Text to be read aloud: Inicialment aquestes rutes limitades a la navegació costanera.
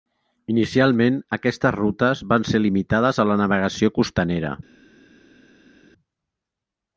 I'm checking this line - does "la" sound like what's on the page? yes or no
yes